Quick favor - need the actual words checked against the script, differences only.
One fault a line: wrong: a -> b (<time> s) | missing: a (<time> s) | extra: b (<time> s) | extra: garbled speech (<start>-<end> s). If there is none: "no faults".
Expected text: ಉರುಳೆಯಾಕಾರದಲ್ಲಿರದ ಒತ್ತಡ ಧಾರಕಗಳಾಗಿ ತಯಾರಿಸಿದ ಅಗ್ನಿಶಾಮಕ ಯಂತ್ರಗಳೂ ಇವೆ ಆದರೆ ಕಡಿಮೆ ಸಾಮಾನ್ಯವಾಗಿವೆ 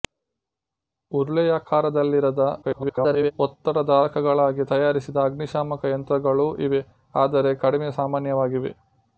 extra: garbled speech (2.6-3.3 s)